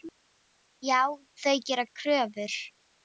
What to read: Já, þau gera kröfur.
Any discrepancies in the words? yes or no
no